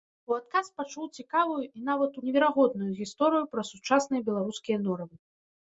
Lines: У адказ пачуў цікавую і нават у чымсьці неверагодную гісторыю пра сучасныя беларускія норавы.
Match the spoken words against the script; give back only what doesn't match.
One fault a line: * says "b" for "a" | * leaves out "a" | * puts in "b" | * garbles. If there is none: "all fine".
* leaves out "чымсьці"